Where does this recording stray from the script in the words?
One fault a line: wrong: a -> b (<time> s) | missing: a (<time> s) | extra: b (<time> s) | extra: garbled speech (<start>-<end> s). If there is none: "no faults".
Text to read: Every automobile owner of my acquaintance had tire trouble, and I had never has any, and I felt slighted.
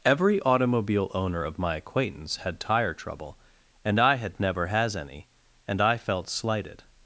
no faults